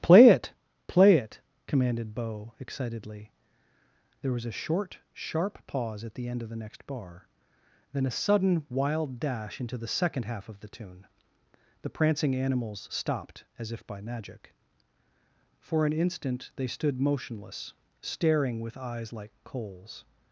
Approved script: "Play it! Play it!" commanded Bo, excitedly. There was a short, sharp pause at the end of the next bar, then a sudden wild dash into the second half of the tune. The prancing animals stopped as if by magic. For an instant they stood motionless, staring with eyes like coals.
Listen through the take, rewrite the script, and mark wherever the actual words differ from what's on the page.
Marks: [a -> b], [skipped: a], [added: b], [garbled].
"Play it! Play it!" commanded Bo, excitedly. There was a short, sharp pause at the end of the next bar, then a sudden wild dash into the second half of the tune. The prancing animals stopped as if by magic. For an instant they stood motionless, staring with eyes like coals.